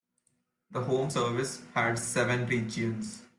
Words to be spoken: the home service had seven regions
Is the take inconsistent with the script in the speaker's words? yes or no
no